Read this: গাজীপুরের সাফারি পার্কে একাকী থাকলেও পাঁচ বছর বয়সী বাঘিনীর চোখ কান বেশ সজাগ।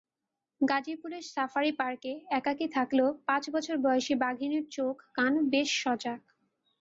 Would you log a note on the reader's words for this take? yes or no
no